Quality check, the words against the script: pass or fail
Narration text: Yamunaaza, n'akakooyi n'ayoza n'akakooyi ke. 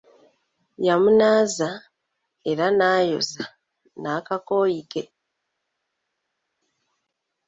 fail